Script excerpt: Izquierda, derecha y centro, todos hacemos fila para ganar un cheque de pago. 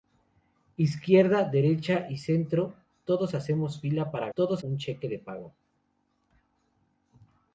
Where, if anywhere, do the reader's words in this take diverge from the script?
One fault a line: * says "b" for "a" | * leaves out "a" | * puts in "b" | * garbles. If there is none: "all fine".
* says "todos" for "ganar"